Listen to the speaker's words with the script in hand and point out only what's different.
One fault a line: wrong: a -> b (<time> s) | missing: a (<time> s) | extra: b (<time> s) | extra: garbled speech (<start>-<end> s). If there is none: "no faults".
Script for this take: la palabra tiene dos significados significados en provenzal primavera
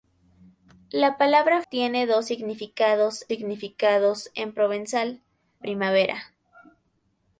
no faults